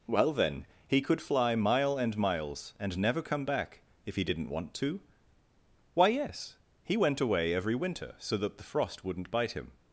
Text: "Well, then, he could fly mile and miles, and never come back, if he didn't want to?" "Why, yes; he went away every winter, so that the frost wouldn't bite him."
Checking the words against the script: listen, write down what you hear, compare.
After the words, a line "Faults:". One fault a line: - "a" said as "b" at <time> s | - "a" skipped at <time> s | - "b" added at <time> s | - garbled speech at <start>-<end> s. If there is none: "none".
"Well, then, he could fly mile and miles, and never come back, if he didn't want to?" "Why, yes; he went away every winter, so that the frost wouldn't bite him."
Faults:
none